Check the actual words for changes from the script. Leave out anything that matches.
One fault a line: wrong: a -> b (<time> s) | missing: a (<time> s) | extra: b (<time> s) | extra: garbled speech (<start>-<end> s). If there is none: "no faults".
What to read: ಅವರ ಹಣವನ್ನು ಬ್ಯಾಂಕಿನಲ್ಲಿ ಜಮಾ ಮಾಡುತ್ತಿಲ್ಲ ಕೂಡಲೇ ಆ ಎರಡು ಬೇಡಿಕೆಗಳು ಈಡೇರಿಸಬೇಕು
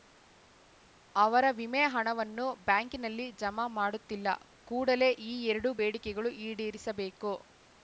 extra: ವಿಮೆ (1.6 s)
wrong: ಆ -> ಈ (5.3 s)